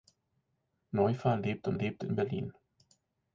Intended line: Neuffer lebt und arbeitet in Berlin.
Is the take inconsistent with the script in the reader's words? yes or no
yes